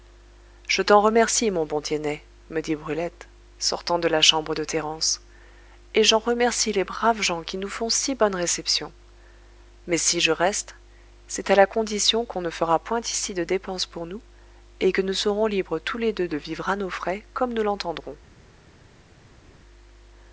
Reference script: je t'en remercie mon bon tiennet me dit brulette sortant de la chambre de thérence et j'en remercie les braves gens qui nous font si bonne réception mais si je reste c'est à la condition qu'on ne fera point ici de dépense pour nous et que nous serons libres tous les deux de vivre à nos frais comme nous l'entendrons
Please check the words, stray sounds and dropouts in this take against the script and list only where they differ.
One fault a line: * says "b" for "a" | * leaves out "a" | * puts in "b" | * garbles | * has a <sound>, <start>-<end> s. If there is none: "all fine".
all fine